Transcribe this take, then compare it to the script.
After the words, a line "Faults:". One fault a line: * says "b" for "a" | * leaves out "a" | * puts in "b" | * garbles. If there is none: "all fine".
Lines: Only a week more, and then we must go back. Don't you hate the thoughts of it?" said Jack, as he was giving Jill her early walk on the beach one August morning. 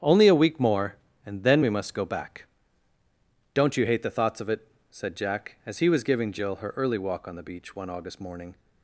Only a week more, and then we must go back. Don't you hate the thoughts of it?" said Jack, as he was giving Jill her early walk on the beach one August morning.
Faults:
all fine